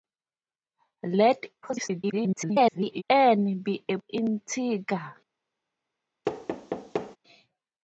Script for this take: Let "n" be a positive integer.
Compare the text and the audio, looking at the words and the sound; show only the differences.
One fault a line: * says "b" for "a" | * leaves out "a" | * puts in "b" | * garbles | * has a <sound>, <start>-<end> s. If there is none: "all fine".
* garbles
* leaves out "positive"
* has a thud, 6.2-7.2 s